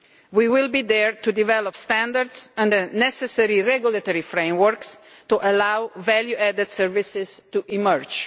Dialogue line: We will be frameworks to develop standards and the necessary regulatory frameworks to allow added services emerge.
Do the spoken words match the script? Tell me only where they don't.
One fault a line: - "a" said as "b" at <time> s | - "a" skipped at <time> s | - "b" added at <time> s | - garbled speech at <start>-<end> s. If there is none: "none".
- "frameworks" said as "there" at 0.8 s
- "value" added at 6.0 s
- "to" added at 7.5 s